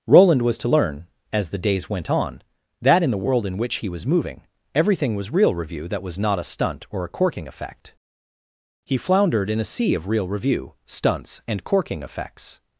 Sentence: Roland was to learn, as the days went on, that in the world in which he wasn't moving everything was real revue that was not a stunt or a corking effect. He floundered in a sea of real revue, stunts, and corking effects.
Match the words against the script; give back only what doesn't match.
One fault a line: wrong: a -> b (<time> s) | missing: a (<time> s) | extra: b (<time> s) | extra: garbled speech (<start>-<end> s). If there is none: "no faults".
wrong: wasn't -> was (3.9 s)